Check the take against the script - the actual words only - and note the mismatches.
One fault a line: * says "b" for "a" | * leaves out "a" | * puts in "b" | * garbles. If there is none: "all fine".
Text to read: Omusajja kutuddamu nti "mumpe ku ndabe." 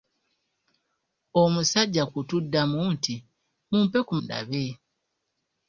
all fine